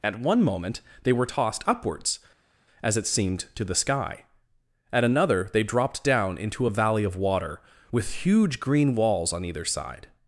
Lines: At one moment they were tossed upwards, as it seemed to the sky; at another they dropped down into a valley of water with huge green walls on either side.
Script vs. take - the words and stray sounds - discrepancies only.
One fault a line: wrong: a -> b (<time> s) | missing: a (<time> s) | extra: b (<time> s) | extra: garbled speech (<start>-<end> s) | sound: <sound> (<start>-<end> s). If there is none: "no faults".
no faults